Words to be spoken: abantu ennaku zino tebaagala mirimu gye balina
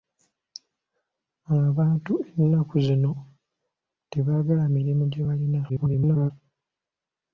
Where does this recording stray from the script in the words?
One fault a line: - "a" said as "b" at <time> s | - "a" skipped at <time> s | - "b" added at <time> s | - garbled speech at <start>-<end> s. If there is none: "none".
- garbled speech at 5.7-6.3 s